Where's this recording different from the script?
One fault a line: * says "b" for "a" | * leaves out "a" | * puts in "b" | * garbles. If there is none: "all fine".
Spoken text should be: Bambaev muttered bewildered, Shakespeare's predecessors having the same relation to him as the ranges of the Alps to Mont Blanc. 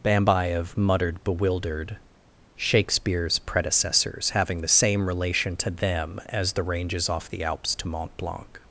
* says "them" for "him"
* says "off" for "of"